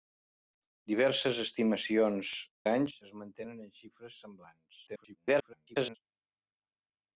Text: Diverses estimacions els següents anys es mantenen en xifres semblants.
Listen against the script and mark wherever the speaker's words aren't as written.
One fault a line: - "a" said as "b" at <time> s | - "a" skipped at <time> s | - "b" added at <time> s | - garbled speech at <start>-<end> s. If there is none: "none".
- "els següents" skipped at 2.3 s
- garbled speech at 4.9-6.0 s